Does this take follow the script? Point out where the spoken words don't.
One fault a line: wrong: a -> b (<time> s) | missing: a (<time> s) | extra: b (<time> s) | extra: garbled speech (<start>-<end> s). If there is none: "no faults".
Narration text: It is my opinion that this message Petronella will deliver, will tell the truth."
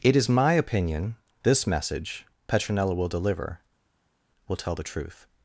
missing: that (1.1 s)